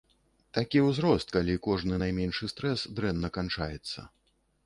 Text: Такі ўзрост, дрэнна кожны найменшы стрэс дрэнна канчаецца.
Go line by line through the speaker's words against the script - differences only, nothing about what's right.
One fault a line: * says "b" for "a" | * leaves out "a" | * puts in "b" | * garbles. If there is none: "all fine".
* says "калі" for "дрэнна"